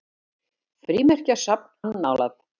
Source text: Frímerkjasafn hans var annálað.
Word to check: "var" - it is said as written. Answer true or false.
false